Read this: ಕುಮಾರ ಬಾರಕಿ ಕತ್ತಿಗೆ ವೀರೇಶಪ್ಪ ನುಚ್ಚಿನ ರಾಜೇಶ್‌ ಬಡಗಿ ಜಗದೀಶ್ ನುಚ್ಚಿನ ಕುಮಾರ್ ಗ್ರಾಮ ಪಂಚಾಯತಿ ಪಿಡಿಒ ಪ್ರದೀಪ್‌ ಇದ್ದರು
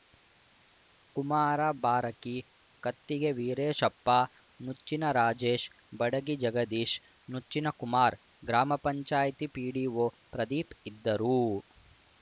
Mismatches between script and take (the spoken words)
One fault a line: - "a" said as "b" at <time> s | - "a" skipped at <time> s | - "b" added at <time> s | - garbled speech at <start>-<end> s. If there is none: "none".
none